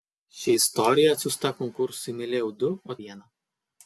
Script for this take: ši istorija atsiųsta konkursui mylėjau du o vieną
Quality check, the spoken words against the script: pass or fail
pass